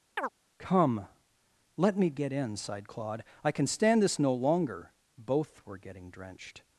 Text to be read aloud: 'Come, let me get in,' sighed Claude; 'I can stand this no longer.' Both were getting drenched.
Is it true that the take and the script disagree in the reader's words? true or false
false